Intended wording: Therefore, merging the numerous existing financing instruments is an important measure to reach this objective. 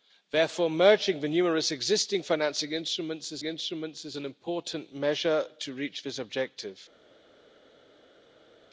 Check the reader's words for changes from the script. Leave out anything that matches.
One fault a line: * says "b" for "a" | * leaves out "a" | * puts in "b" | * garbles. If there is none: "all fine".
* puts in "instruments is"